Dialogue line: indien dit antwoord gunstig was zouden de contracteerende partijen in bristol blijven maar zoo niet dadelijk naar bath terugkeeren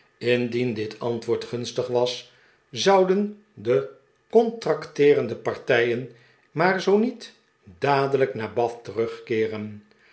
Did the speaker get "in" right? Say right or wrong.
wrong